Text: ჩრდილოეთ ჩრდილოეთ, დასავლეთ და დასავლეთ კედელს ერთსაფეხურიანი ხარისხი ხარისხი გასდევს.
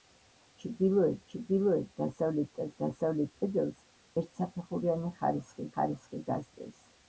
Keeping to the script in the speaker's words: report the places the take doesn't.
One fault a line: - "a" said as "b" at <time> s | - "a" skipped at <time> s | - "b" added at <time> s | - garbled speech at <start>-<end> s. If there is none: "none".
none